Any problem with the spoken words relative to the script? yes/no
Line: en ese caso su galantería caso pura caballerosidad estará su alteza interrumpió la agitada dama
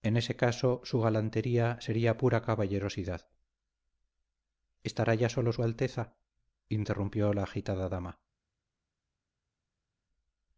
yes